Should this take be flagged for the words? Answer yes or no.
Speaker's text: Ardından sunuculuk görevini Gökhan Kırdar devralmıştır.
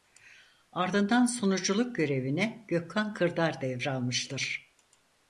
no